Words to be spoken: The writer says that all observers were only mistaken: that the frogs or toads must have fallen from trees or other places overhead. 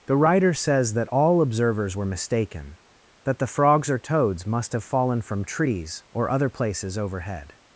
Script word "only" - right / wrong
wrong